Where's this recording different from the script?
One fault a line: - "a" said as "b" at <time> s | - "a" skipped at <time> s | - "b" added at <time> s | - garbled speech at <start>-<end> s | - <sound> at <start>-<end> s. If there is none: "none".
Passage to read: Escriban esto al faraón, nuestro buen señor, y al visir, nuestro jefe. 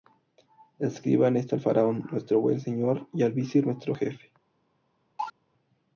- cough at 5.2-5.3 s